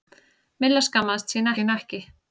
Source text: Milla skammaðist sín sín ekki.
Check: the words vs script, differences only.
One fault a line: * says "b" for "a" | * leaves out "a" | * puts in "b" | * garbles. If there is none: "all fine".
all fine